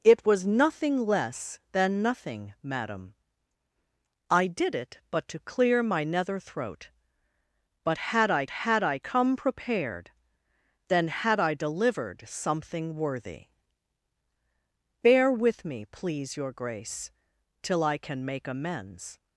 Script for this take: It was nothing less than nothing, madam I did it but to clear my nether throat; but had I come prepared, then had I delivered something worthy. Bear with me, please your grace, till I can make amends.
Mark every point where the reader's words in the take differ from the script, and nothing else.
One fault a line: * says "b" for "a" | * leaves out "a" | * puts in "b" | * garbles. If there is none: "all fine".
* puts in "had I"